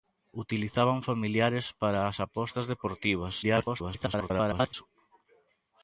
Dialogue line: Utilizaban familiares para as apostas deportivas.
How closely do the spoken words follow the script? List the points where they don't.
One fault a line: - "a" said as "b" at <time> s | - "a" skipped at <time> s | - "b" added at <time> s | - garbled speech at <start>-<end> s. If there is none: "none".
- garbled speech at 3.4-4.7 s